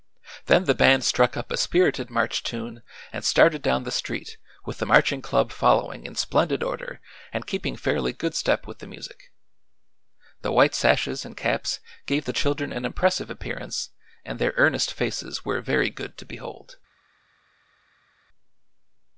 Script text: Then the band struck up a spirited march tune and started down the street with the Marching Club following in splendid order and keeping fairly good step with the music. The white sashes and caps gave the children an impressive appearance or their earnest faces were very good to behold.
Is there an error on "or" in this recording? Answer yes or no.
yes